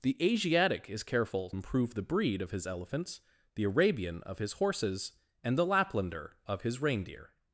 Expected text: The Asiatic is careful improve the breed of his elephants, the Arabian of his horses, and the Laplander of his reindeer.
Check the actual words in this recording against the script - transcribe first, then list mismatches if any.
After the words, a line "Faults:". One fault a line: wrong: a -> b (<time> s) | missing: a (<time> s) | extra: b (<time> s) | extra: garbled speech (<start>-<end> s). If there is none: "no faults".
The Asiatic is careful improve the breed of his elephants, the Arabian of his horses, and the Laplander of his reindeer.
Faults:
no faults